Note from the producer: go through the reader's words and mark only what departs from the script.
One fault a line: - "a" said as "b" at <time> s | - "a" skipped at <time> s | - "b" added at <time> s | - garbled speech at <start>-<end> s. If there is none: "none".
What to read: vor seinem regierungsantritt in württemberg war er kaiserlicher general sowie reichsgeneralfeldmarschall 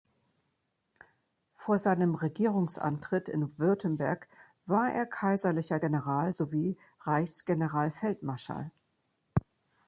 none